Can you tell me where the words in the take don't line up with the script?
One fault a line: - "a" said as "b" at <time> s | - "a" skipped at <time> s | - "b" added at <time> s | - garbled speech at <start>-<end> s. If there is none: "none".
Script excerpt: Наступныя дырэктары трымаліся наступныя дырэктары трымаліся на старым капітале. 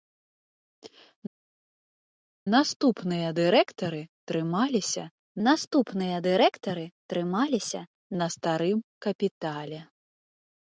none